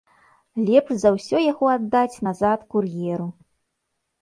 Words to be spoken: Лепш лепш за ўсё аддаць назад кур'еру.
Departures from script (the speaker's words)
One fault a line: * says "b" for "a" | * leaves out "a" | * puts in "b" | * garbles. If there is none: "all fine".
* leaves out "лепш"
* puts in "яго"